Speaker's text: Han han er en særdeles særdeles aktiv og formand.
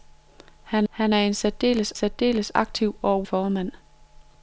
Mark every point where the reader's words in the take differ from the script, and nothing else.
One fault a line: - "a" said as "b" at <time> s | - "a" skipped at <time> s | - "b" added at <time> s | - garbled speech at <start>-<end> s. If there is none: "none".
none